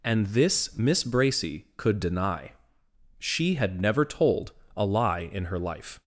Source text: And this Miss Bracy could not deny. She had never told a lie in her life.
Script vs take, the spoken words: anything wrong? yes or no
yes